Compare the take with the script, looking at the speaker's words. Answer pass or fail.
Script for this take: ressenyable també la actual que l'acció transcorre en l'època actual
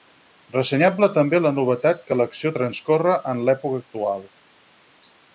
fail